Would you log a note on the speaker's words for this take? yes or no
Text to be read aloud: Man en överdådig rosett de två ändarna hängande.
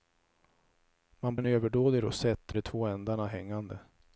no